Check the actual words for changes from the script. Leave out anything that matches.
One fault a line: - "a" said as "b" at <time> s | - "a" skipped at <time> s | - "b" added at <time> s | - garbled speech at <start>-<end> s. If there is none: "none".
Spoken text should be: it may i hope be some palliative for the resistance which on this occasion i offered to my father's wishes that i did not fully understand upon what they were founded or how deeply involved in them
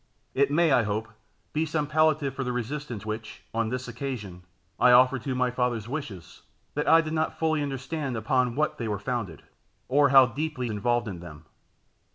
none